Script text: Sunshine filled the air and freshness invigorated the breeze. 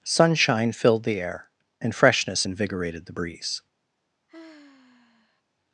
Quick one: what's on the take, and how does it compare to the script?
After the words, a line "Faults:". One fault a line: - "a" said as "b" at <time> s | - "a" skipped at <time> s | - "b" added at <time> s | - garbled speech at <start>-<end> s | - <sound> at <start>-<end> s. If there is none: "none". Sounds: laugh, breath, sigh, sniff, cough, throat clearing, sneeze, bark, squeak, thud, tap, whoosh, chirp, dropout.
Sunshine filled the air and freshness invigorated the breeze.
Faults:
- sigh at 4.3-5.4 s